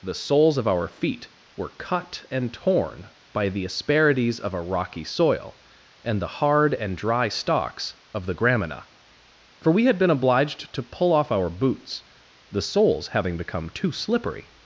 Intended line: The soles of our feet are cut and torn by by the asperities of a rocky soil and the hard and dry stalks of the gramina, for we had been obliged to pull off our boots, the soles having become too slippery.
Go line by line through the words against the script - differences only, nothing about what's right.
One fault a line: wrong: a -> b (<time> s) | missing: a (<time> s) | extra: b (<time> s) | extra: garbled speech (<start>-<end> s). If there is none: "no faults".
wrong: are -> were (1.6 s)
missing: by (3.5 s)